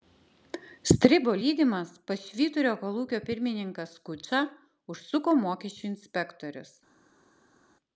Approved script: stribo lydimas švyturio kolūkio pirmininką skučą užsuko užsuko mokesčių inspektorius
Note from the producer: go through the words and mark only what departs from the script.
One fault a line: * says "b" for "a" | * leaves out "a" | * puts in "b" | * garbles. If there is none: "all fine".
* puts in "pas"
* leaves out "užsuko"